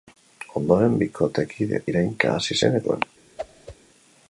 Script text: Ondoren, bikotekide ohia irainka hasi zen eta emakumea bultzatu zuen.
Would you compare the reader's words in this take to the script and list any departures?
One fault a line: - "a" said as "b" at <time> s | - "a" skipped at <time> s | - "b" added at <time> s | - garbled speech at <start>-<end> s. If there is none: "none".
- "ohia" skipped at 1.8 s
- "eta emakumea bultzatu" skipped at 2.8 s